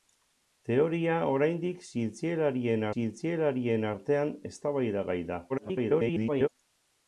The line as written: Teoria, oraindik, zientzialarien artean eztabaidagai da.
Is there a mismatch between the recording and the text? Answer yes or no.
yes